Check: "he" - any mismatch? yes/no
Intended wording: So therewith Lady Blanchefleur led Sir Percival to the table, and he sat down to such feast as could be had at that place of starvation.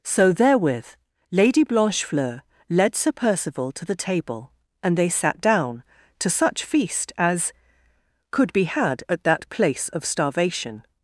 yes